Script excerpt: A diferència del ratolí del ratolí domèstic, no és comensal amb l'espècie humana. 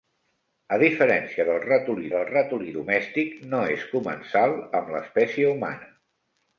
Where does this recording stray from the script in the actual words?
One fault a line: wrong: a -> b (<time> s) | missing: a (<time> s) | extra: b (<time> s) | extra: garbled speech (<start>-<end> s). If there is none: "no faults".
no faults